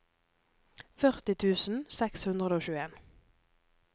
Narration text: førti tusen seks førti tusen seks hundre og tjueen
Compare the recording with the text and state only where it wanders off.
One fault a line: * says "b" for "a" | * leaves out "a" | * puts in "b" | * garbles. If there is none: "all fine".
* leaves out "førti tusen seks"